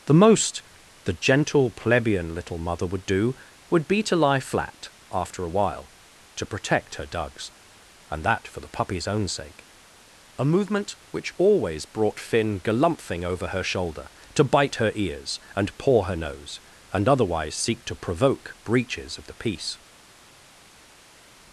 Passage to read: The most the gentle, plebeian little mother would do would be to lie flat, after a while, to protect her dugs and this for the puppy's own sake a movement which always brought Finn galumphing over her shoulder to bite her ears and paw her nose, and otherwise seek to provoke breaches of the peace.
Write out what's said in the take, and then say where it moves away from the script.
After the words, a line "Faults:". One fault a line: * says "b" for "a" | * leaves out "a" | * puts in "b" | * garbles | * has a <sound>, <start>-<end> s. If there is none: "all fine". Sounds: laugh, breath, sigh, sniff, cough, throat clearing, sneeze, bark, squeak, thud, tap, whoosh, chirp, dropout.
The most the gentle, plebeian little mother would do would be to lie flat, after a while, to protect her dugs and that for the puppy's own sake a movement which always brought Finn galumphing over her shoulder to bite her ears and paw her nose, and otherwise seek to provoke breaches of the peace.
Faults:
* says "that" for "this"